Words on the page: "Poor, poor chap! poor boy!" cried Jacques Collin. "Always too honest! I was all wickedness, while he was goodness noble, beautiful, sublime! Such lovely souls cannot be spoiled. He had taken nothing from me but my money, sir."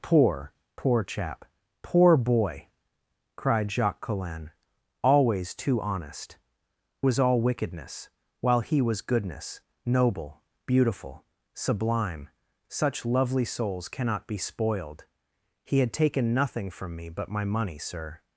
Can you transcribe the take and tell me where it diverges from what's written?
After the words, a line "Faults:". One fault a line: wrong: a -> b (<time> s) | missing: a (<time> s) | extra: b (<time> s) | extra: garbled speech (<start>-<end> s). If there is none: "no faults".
"Poor, poor chap! poor boy!" cried Jacques Collin. "Always too honest! was all wickedness, while he was goodness noble, beautiful, sublime! Such lovely souls cannot be spoiled. He had taken nothing from me but my money, sir."
Faults:
missing: I (6.4 s)